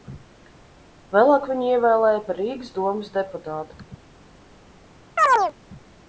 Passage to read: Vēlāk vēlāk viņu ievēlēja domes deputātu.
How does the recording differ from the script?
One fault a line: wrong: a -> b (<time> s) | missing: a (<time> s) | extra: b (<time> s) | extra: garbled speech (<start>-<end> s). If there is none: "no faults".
missing: vēlāk (1.5 s)
extra: par Rīgas (2.3 s)